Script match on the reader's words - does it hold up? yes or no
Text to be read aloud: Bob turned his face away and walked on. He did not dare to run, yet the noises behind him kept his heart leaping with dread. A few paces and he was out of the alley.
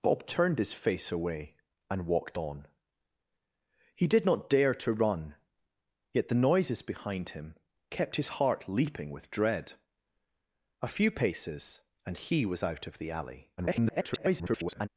no